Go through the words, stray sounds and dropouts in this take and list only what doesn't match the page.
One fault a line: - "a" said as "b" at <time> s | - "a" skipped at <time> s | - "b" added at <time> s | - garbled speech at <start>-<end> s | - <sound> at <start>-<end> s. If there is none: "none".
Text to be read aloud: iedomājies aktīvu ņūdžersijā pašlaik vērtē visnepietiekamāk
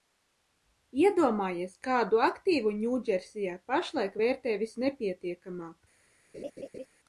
- "kādu" added at 1.9 s
- laugh at 6.3-6.9 s